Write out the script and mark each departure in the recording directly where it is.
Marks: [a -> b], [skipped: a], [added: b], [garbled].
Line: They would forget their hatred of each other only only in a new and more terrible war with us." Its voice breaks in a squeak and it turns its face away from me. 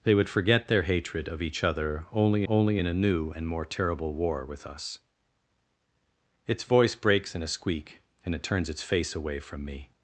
They would forget their hatred of each other only only in a new and more terrible war with us." Its voice breaks in a squeak and it turns its face away from me.